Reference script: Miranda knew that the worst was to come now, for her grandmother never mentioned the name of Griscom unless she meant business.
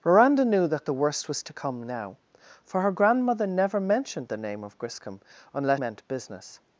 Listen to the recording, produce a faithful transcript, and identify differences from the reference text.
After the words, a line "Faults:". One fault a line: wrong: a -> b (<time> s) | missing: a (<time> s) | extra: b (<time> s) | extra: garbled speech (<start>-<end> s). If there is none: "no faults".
Miranda knew that the worst was to come now, for her grandmother never mentioned the name of Griscom unless meant business.
Faults:
missing: she (5.8 s)